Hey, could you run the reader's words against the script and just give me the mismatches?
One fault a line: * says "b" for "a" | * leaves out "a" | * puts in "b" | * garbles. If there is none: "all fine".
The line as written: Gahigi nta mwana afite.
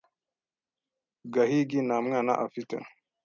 all fine